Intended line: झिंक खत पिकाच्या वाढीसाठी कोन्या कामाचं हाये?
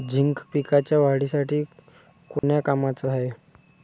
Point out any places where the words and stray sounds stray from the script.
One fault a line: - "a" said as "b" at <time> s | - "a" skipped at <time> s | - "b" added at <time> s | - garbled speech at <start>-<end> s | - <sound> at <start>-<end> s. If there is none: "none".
- "खत" skipped at 0.4 s
- dropout at 2.4-2.4 s